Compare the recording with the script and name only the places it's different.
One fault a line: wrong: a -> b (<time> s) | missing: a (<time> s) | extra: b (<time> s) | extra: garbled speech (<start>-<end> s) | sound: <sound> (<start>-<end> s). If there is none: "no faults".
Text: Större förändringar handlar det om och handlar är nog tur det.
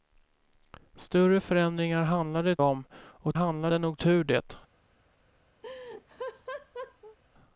sound: laugh (5.6-7.2 s)